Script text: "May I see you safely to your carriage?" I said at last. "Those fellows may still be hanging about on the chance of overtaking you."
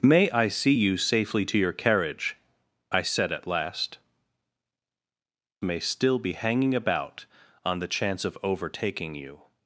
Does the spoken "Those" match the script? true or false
false